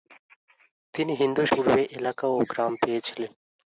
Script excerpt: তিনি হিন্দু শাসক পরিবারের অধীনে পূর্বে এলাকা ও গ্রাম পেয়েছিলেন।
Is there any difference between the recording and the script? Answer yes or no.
yes